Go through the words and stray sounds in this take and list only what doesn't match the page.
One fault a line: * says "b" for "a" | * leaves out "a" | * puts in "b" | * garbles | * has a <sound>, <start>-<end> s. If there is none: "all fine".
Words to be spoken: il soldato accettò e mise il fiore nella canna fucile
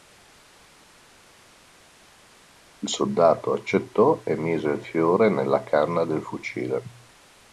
* puts in "del"